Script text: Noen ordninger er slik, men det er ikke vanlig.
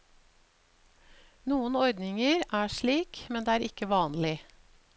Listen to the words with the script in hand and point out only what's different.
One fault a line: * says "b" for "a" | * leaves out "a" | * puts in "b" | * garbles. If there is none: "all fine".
all fine